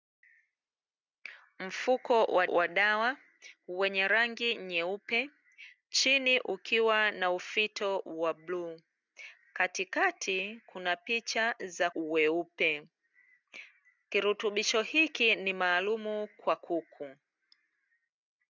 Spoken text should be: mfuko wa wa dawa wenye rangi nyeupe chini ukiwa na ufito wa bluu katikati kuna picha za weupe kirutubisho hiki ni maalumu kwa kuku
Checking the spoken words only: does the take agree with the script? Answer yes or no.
yes